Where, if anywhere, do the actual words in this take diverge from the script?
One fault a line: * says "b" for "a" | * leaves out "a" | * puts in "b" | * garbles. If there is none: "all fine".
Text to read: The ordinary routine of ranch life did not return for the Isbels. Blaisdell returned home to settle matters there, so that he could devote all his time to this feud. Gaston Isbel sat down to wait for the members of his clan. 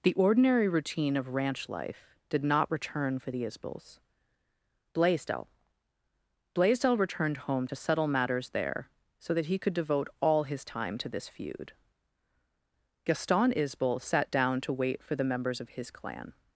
* puts in "Blaisdell"